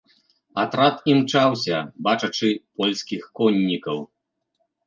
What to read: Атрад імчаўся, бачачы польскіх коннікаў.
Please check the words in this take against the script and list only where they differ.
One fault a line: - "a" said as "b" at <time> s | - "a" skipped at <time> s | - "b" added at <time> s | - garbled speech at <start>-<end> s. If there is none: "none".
none